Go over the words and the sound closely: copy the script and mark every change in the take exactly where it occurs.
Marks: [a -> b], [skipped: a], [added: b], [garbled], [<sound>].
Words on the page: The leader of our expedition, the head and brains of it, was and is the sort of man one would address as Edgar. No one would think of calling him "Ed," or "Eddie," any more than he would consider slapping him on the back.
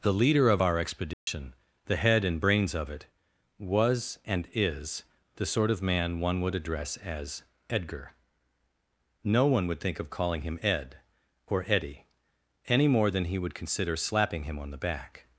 The leader of our expedition, [dropout] the head and brains of it, was and is the sort of man one would address as Edgar. No one would think of calling him "Ed," or "Eddie," any more than he would consider slapping him on the back.